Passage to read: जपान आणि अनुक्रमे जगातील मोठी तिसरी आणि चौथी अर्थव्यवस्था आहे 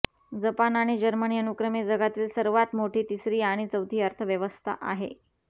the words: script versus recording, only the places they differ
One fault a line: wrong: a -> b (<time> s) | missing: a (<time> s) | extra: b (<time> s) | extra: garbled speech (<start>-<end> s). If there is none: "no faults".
extra: जर्मनी (1.0 s)
extra: सर्वात (2.3 s)